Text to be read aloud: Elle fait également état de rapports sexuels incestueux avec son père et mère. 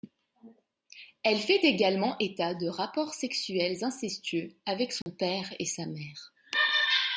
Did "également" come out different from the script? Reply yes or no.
no